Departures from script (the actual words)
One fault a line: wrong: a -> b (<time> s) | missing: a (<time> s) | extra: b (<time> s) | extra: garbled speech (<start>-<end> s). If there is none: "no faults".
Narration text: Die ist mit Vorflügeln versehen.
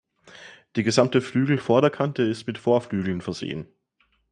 extra: gesamte Flügelvorderkante (0.8 s)